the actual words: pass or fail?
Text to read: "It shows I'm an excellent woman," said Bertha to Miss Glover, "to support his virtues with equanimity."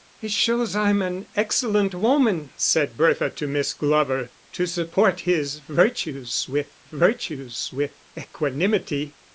fail